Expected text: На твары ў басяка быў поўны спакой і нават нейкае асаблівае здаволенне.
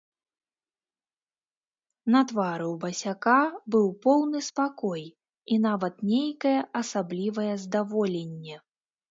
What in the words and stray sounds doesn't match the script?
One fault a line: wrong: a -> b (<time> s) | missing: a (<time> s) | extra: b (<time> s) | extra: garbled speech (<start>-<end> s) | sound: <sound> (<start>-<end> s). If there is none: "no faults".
no faults